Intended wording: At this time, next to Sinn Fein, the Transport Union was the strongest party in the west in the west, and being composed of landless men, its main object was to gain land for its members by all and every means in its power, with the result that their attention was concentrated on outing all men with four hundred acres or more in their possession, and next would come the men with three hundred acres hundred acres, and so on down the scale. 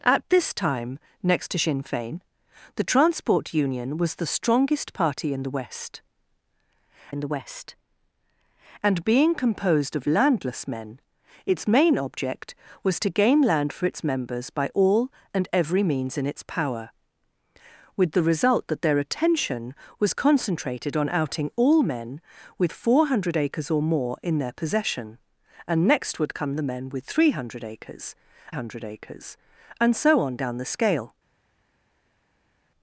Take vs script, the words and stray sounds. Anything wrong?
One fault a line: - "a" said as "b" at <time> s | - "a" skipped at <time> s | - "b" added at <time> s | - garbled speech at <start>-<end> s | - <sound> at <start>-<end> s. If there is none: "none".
none